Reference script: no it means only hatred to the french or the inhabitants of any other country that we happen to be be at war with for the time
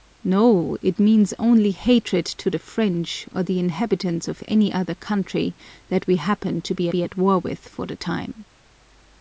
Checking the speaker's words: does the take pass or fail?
pass